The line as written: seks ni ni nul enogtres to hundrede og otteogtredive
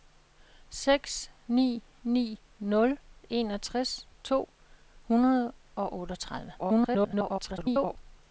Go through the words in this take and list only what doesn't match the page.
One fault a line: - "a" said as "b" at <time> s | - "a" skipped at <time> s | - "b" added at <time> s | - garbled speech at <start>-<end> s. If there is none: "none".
- garbled speech at 6.6-8.0 s